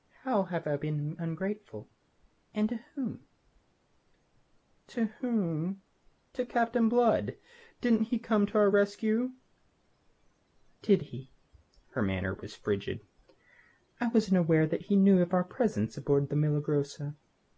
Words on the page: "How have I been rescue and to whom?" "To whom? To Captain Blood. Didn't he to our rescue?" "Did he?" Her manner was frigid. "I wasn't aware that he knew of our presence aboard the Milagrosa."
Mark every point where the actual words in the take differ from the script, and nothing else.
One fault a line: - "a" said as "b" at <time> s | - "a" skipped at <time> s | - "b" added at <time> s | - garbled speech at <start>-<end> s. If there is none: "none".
- "rescue" said as "ungrateful" at 1.2 s
- "come" added at 8.2 s